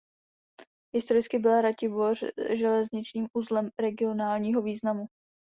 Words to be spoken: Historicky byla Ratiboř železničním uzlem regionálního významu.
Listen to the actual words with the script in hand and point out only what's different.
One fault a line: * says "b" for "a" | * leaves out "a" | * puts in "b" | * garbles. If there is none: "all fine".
all fine